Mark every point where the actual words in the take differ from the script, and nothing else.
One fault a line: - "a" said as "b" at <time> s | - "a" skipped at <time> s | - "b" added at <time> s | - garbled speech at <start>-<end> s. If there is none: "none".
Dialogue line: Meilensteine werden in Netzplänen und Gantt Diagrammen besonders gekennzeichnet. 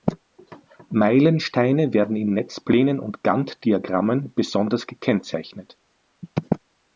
none